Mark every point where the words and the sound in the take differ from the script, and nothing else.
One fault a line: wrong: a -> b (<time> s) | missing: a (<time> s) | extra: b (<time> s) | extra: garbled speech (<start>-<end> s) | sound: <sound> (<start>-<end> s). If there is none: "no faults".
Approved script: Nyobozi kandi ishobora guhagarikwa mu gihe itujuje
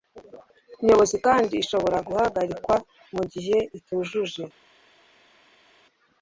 no faults